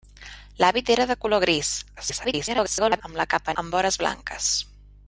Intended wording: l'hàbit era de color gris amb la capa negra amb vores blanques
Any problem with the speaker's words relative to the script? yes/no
yes